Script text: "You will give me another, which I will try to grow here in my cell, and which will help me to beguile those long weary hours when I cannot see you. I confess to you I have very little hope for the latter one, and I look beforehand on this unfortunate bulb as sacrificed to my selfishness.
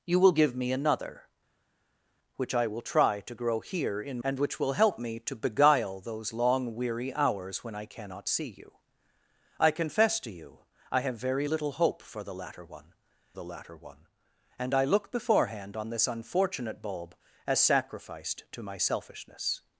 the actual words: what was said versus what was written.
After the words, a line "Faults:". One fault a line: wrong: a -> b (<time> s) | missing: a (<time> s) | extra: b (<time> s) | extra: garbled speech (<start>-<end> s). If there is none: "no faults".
"You will give me another, which I will try to grow here in and which will help me to beguile those long weary hours when I cannot see you. I confess to you I have very little hope for the latter one the latter one, and I look beforehand on this unfortunate bulb as sacrificed to my selfishness.
Faults:
missing: my cell (4.2 s)
extra: the latter one (13.3 s)